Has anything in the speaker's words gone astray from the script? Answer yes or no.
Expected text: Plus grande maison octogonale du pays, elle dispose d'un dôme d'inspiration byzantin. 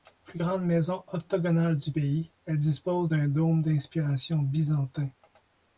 no